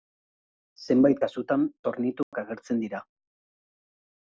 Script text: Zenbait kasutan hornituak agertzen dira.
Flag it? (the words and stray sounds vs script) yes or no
yes